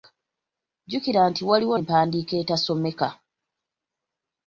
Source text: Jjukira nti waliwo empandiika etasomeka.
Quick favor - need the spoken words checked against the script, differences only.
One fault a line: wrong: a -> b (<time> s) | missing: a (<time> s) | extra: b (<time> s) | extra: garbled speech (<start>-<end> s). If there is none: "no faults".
no faults